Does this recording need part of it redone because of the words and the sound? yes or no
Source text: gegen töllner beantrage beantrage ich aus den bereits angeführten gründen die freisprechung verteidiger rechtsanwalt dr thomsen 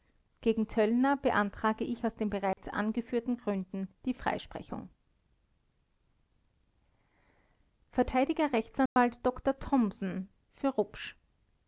yes